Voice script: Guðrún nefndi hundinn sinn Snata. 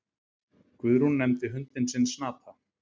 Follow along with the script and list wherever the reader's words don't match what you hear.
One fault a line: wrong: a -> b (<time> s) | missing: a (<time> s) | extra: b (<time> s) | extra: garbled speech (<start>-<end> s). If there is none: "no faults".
no faults